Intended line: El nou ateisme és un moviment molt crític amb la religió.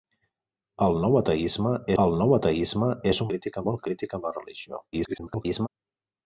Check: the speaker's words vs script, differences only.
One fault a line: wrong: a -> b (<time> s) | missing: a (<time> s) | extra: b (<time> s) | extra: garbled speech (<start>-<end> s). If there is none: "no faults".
extra: el nou ateisme (2.0 s)
wrong: moviment -> crític (3.3 s)
extra: garbled speech (4.9-5.7 s)